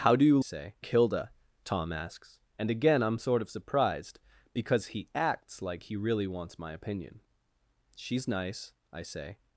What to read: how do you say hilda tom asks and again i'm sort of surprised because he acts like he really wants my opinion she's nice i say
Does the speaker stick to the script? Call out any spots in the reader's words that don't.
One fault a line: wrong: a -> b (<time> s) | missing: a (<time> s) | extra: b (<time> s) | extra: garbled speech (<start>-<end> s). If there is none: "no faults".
no faults